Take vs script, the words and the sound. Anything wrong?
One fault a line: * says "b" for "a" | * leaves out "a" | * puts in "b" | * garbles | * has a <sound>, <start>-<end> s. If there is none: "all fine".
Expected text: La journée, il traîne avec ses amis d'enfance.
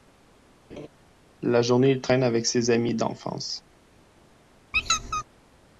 * has a laugh, 0.7-0.9 s
* has a squeak, 4.7-5.2 s